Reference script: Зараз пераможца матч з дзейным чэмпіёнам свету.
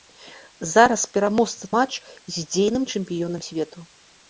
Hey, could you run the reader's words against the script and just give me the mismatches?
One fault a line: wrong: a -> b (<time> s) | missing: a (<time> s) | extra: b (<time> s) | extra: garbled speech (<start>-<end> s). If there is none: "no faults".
no faults